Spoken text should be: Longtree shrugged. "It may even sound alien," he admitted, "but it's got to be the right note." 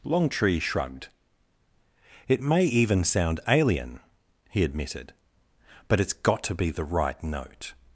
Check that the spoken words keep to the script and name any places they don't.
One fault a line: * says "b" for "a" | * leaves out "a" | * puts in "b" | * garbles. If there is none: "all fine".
all fine